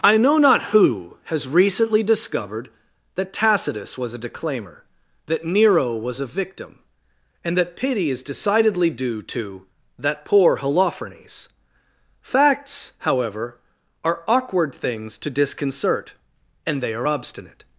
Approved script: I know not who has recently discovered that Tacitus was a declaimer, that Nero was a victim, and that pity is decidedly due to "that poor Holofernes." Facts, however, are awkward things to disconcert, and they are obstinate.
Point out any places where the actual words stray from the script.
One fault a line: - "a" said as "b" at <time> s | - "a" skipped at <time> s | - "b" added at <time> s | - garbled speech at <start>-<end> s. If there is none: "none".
none